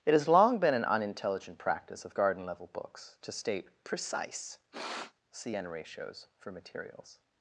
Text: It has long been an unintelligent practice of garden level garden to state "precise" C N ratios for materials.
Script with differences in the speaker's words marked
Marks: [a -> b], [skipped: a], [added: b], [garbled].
It has long been an unintelligent practice of garden level [garden -> books] to state "precise" C N ratios for materials.